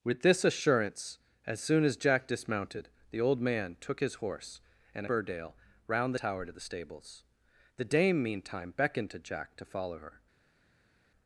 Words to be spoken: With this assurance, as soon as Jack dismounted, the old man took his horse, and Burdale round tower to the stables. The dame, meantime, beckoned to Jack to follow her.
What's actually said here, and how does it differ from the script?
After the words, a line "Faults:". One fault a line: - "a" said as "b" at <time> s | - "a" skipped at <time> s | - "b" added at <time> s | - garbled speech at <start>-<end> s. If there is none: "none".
With this assurance, as soon as Jack dismounted, the old man took his horse, and Burdale round tower to the stables. The dame, meantime, beckoned to Jack to follow her.
Faults:
none